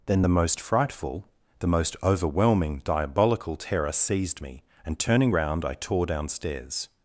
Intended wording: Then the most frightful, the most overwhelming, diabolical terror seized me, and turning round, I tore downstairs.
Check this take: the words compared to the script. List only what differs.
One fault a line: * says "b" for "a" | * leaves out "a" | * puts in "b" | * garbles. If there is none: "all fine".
all fine